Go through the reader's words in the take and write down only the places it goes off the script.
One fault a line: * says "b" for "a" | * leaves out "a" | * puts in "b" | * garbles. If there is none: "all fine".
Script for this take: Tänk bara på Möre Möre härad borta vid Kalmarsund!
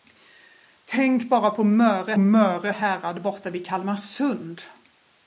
all fine